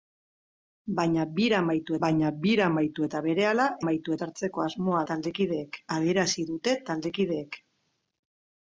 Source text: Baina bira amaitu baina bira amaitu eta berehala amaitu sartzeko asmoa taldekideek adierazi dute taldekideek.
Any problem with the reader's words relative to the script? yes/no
no